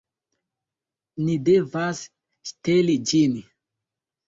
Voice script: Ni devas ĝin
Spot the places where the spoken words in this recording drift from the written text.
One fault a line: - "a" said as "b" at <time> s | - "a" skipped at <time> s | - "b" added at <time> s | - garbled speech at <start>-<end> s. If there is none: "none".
- "ŝteli" added at 2.5 s